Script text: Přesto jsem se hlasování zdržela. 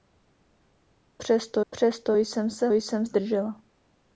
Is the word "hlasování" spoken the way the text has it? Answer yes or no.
no